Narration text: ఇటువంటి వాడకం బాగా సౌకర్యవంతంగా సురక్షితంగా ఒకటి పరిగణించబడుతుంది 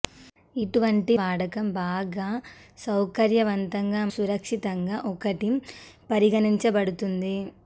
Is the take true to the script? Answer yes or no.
yes